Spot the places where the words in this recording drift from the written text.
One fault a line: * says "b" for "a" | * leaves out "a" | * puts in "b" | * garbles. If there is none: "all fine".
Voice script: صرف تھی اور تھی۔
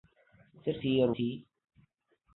all fine